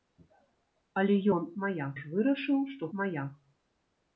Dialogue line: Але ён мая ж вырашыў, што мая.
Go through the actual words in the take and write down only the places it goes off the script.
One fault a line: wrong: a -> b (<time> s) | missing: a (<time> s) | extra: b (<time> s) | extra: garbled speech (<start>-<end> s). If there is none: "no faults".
no faults